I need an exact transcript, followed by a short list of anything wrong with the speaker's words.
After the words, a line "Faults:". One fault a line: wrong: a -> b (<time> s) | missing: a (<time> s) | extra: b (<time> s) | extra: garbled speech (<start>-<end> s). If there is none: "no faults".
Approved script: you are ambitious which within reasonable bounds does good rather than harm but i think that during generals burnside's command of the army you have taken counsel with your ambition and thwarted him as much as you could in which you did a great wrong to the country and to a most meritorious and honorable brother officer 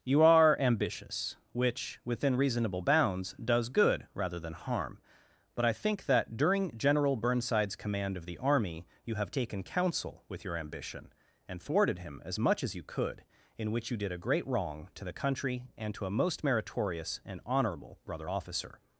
you are ambitious which within reasonable bounds does good rather than harm but i think that during general burnside's command of the army you have taken counsel with your ambition and thwarted him as much as you could in which you did a great wrong to the country and to a most meritorious and honorable brother officer
Faults:
wrong: generals -> general (6.8 s)